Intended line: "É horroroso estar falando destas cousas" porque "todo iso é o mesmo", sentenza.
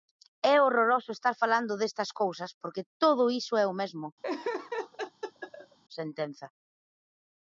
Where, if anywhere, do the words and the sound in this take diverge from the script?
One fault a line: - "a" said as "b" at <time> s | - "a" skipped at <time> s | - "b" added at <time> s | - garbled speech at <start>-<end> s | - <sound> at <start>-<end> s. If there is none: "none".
- laugh at 4.2-5.8 s